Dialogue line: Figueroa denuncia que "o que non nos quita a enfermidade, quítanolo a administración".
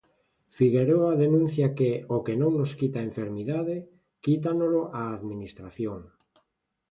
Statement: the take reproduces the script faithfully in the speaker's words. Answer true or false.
true